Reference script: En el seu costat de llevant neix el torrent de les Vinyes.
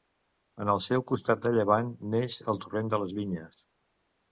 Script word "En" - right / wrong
right